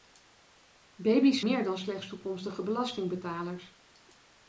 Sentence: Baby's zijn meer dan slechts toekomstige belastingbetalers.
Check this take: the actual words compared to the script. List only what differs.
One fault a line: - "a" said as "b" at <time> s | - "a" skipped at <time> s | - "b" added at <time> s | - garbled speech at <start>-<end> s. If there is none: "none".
- "zijn" skipped at 1.4 s